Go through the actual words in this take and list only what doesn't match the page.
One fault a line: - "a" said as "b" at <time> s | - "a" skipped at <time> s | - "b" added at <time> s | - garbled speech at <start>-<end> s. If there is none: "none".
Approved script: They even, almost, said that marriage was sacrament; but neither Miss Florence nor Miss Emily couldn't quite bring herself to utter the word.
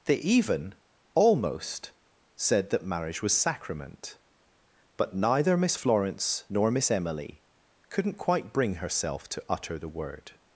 none